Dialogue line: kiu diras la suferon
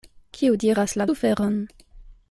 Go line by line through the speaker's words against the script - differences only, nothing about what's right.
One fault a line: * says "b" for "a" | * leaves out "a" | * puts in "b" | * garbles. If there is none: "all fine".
all fine